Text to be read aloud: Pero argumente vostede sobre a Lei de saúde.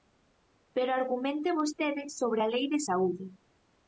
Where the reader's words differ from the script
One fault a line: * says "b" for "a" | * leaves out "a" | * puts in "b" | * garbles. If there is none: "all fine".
all fine